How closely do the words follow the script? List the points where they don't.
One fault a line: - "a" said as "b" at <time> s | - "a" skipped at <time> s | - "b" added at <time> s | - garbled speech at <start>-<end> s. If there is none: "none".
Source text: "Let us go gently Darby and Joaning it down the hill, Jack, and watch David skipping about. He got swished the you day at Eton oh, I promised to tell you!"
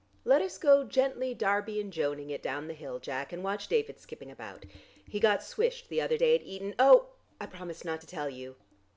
- "you" said as "other" at 6.0 s
- "not" added at 7.8 s